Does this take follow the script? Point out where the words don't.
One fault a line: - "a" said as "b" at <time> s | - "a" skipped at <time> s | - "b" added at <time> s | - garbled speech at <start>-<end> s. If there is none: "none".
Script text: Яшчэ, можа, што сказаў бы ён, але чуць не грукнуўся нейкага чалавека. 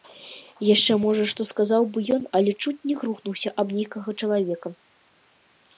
- "аб" added at 3.7 s